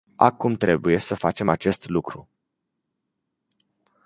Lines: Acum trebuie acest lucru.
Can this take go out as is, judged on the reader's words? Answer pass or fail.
fail